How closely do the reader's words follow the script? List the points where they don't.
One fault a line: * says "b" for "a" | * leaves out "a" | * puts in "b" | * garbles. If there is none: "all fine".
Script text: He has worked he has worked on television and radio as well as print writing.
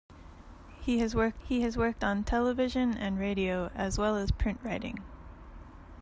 all fine